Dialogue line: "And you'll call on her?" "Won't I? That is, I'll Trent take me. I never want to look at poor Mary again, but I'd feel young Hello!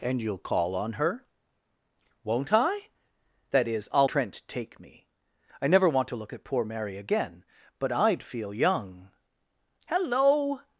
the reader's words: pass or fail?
pass